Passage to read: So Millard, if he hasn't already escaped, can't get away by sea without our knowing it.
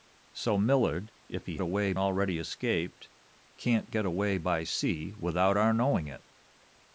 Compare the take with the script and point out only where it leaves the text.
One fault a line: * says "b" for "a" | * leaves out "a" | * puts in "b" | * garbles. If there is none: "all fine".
* says "away" for "hasn't"